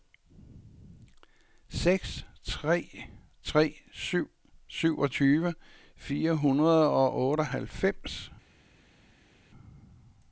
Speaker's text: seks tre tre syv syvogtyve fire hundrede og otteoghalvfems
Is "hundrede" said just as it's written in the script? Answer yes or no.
yes